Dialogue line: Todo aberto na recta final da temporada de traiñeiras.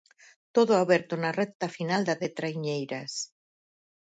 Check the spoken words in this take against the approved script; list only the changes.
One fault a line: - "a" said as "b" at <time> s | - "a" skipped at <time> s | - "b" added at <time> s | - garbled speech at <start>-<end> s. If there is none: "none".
- "temporada" skipped at 2.2 s